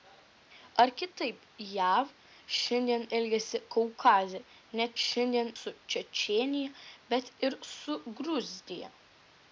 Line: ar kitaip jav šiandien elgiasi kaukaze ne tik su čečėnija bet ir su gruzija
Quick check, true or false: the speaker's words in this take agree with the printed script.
false